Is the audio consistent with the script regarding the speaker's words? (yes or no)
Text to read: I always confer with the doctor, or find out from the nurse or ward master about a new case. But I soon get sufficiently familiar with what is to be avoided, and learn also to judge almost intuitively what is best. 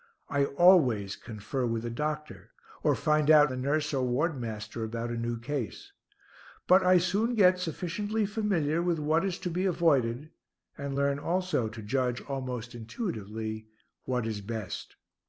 no